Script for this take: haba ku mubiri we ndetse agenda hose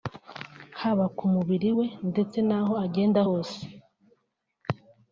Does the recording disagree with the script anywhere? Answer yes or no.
yes